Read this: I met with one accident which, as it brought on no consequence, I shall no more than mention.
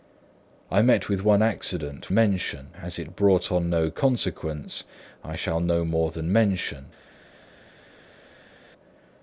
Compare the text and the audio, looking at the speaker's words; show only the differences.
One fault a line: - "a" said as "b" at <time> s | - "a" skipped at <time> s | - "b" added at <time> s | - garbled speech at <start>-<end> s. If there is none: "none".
- "which" said as "mention" at 2.1 s